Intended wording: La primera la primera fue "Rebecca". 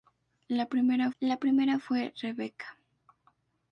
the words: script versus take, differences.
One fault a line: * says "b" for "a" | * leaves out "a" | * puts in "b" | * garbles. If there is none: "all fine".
all fine